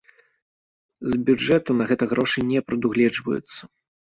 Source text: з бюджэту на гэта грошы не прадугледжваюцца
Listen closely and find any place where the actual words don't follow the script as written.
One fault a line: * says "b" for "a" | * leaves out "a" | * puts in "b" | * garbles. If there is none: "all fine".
all fine